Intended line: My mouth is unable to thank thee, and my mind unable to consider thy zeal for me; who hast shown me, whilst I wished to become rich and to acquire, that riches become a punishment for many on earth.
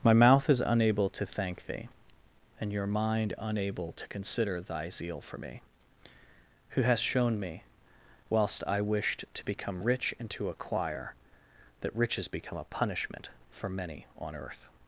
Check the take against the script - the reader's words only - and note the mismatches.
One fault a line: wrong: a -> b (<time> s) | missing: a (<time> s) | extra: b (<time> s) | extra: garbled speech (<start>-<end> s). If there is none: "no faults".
wrong: my -> your (2.7 s)